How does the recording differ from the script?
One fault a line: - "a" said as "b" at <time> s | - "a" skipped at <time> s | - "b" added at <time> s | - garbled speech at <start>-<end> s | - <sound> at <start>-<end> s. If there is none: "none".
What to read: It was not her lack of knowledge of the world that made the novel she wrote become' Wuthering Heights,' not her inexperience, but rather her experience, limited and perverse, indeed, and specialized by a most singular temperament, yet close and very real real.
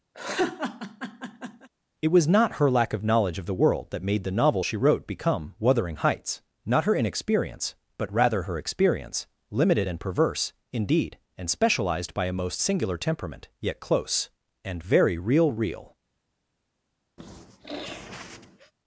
- laugh at 0.1-1.7 s
- sniff at 17.2-18.7 s